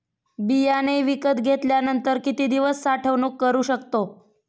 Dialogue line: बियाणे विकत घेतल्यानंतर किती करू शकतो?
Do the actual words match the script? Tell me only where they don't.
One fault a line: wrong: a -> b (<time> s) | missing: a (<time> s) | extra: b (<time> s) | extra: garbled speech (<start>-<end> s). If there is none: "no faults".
extra: दिवस साठवणूक (2.5 s)